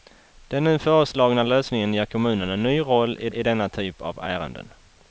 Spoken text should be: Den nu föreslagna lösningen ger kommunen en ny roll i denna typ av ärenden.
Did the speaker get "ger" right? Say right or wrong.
right